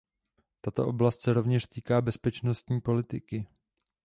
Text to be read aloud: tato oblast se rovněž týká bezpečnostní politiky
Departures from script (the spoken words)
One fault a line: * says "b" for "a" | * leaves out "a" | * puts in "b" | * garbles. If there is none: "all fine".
all fine